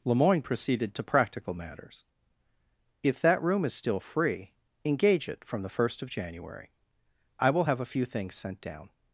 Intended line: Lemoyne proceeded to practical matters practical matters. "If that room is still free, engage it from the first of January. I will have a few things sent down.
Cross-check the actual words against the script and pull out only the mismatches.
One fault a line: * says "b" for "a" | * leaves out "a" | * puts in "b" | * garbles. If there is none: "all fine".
* leaves out "practical matters"